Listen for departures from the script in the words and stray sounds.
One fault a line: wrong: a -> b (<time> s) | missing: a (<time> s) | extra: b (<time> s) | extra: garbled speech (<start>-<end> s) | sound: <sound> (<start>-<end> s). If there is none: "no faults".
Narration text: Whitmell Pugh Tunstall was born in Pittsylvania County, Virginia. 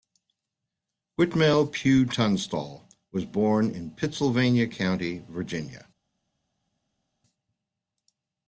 no faults